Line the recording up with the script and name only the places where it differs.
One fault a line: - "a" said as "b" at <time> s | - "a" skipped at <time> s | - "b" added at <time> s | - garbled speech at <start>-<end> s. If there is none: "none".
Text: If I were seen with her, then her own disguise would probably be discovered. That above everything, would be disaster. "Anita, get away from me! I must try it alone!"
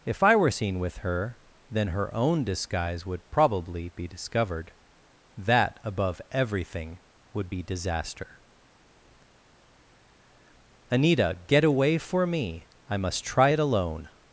- "from" said as "for" at 12.0 s